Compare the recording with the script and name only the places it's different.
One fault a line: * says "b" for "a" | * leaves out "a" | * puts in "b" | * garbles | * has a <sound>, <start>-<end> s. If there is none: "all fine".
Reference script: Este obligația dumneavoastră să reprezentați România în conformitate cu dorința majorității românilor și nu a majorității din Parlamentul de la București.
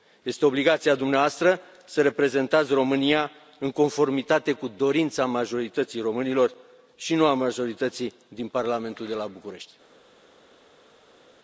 all fine